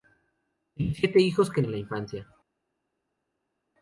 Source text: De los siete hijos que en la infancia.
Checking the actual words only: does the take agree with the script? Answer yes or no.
yes